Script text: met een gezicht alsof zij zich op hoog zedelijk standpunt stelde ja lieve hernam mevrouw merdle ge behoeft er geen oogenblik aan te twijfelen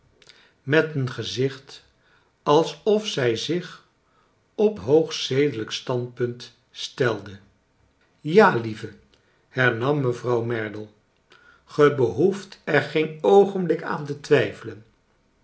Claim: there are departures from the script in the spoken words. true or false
false